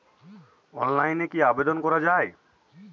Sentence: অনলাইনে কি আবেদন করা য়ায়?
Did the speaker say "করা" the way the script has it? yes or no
yes